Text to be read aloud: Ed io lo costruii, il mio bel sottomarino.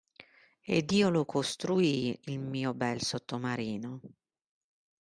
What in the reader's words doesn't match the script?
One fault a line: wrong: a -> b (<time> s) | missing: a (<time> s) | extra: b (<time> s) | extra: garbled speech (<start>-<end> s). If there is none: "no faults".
no faults